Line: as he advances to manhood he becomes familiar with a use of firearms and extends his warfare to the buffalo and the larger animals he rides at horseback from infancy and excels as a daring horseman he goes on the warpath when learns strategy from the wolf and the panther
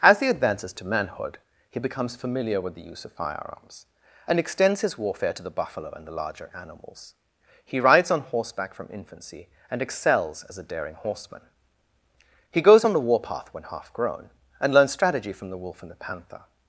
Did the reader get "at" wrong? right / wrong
wrong